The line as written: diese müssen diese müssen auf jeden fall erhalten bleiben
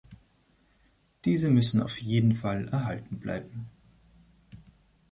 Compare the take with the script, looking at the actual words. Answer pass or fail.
fail